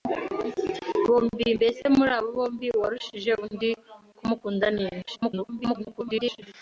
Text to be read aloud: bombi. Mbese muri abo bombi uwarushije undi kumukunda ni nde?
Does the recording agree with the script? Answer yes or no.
no